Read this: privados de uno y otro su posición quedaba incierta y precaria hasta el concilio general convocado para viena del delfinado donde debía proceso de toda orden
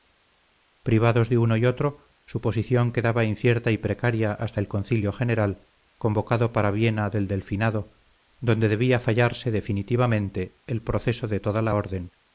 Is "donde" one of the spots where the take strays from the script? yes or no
no